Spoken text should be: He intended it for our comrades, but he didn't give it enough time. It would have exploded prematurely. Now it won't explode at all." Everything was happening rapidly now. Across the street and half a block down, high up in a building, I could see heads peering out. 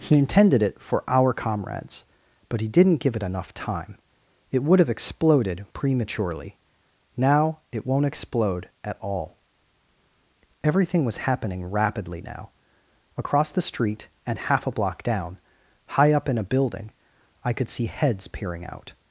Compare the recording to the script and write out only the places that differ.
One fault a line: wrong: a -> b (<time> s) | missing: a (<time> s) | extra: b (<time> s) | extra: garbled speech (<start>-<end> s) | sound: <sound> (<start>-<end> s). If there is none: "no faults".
no faults